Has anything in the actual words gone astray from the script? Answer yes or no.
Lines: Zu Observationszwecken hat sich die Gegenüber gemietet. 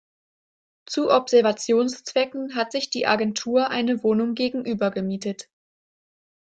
yes